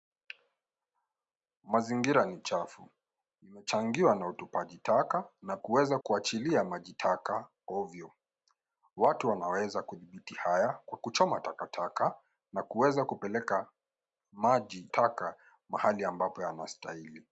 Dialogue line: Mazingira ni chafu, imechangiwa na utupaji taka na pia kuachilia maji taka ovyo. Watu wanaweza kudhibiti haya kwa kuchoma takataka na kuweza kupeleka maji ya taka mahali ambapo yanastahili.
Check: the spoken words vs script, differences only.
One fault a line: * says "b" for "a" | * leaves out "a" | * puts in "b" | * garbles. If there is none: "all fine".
* says "kuweza" for "pia"
* leaves out "ya"